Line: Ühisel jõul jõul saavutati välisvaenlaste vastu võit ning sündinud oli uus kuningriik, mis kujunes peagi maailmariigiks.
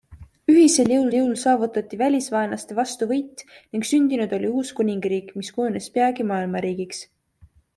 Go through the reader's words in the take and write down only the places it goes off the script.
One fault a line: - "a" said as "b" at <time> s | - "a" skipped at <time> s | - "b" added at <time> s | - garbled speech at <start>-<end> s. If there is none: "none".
none